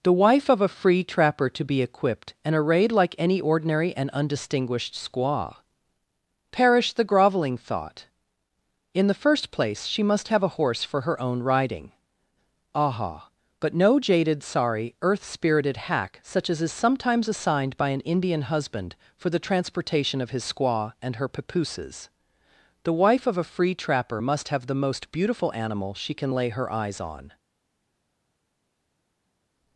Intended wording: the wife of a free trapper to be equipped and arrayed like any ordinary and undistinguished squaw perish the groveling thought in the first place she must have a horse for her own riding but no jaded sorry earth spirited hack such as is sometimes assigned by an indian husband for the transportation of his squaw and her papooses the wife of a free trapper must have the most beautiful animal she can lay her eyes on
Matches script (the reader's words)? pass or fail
fail